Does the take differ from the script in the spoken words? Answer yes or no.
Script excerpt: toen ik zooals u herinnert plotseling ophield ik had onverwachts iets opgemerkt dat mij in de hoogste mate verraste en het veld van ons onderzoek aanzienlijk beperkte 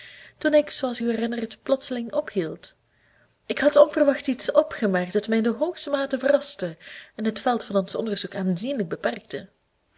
no